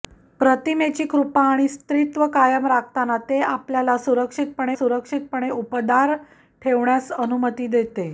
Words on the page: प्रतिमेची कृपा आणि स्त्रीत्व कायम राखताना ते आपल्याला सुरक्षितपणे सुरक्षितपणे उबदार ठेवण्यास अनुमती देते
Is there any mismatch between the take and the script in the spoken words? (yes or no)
no